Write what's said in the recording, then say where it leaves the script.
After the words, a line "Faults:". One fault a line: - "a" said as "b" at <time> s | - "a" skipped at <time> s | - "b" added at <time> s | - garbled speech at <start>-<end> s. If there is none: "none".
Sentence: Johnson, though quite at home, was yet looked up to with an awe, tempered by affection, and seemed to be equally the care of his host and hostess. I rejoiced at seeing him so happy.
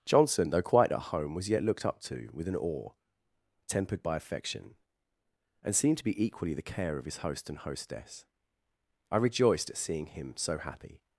Johnson, though quite at home, was yet looked up to with an awe, tempered by affection, and seemed to be equally the care of his host and hostess. I rejoiced at seeing him so happy.
Faults:
none